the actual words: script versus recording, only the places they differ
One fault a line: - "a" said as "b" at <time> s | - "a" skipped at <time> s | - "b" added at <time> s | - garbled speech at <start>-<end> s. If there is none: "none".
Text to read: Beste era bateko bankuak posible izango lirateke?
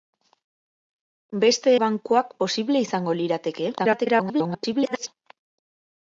- "era bateko" skipped at 1.7 s
- garbled speech at 3.8-5.1 s